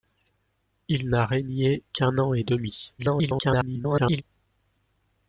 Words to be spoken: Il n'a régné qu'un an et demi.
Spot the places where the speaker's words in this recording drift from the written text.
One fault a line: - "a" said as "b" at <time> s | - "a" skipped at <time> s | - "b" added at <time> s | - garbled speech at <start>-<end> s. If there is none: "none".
- garbled speech at 3.0-4.2 s